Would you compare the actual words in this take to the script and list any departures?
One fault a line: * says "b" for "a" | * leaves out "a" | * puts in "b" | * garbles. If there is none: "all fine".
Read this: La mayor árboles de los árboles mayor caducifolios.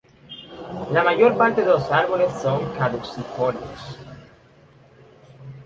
* says "parte" for "árboles"
* says "son" for "mayor"